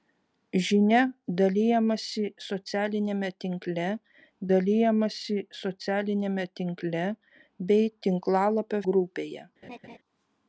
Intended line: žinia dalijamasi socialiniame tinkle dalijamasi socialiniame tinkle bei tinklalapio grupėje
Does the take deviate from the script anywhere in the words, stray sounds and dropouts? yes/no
yes